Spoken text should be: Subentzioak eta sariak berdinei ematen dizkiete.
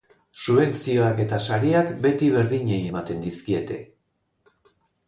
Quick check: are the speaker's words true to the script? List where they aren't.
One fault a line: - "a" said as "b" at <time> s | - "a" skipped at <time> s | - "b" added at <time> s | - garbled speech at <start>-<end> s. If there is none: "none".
- "beti" added at 2.1 s